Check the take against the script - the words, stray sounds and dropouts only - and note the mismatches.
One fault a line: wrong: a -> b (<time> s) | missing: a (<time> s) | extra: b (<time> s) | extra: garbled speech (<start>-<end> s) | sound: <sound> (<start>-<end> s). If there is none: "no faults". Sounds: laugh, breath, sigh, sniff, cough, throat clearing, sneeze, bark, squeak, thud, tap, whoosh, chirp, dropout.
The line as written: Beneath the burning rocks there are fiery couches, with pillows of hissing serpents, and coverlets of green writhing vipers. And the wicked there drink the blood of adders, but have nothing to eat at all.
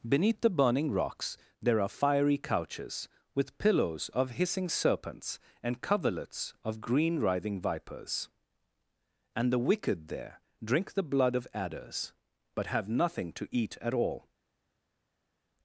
no faults